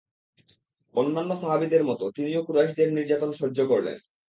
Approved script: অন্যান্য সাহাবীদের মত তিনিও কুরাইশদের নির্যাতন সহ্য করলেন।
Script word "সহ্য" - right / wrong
right